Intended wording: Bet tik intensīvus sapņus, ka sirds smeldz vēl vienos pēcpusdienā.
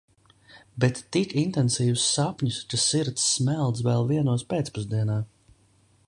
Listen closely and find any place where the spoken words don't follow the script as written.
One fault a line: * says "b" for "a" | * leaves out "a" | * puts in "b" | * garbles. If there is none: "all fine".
all fine